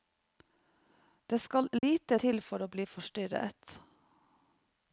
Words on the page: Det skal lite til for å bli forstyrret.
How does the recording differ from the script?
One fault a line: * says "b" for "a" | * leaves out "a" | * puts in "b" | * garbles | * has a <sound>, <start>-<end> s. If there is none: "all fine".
* has a dropout, 1.8-1.8 s